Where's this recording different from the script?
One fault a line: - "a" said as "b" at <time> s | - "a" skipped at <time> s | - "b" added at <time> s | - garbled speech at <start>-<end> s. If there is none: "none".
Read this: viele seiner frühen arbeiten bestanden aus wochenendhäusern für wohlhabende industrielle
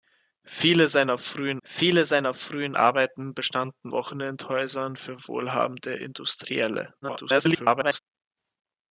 - "viele seiner frühen" added at 1.7 s
- "aus" skipped at 3.9 s
- garbled speech at 7.0-8.0 s